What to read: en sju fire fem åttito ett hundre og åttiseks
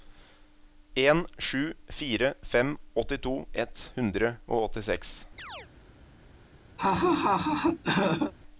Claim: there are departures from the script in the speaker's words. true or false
false